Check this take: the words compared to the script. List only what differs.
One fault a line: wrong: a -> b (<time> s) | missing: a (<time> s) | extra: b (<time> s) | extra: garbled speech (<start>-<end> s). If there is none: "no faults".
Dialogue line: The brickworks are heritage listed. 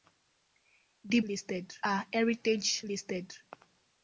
wrong: brickworks -> listed (1.2 s)